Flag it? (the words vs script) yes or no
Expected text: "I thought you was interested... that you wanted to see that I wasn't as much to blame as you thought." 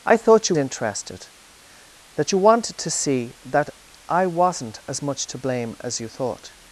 yes